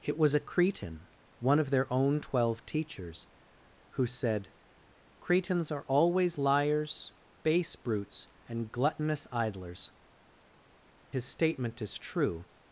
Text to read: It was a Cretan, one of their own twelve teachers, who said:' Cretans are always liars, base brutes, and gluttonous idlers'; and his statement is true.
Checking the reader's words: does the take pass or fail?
fail